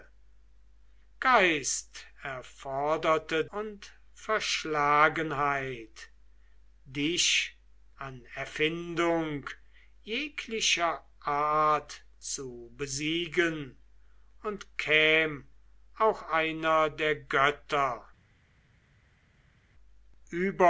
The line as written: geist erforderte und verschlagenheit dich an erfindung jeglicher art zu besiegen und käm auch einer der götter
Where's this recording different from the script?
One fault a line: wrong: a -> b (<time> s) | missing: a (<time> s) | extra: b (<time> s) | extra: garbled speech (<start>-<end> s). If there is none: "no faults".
no faults